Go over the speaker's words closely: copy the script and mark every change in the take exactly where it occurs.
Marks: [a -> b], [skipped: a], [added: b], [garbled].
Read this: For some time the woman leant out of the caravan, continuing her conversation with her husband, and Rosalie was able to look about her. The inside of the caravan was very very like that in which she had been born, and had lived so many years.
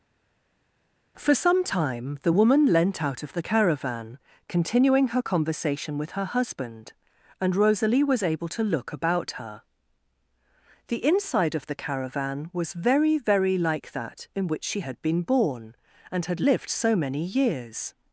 For some time the woman leant out of the caravan, continuing her conversation with her husband, and Rosalie was able to look about her. The inside of the caravan was very very like that in which she had been born, and had lived so many years.